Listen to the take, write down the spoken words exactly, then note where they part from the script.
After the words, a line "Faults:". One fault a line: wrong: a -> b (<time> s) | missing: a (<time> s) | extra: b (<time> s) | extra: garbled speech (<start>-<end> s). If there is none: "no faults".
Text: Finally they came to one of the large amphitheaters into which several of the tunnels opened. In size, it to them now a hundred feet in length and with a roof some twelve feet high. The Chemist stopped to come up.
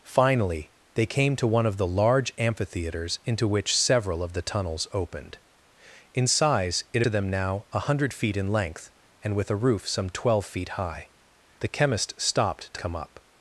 Finally they came to one of the large amphitheaters into which several of the tunnels opened. In size, it to them now a hundred feet in length and with a roof some twelve feet high. The Chemist stopped to come up.
Faults:
no faults